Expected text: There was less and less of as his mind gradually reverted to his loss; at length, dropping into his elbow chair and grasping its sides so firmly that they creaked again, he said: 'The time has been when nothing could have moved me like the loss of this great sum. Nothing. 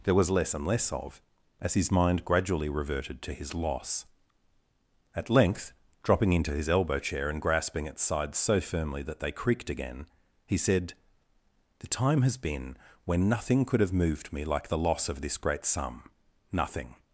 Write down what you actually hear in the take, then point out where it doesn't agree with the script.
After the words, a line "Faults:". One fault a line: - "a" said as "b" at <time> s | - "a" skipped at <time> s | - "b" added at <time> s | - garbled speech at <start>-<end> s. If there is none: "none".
There was less and less of as his mind gradually reverted to his loss; at length, dropping into his elbow chair and grasping its sides so firmly that they creaked again, he said: 'The time has been when nothing could have moved me like the loss of this great sum. Nothing.
Faults:
none